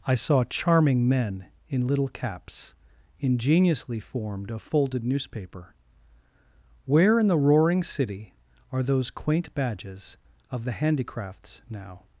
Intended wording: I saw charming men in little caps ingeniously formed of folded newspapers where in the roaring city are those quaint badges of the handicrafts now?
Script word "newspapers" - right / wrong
wrong